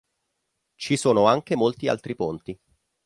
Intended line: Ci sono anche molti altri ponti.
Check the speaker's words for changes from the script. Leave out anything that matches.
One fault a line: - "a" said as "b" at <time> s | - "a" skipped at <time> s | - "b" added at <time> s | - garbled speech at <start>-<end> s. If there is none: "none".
none